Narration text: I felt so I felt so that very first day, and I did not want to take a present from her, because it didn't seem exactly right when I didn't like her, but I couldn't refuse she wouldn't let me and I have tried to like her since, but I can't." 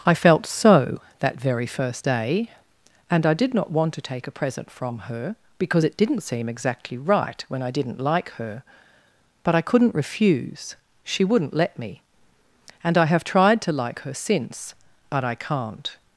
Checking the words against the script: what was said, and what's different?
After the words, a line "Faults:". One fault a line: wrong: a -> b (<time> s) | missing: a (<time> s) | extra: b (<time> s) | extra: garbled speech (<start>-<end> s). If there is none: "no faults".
I felt so that very first day, and I did not want to take a present from her, because it didn't seem exactly right when I didn't like her, but I couldn't refuse she wouldn't let me and I have tried to like her since, but I can't."
Faults:
missing: I felt so (1.0 s)